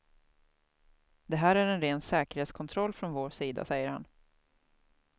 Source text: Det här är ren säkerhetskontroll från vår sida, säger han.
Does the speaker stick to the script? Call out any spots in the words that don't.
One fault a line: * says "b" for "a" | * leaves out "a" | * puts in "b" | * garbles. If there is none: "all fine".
* puts in "en"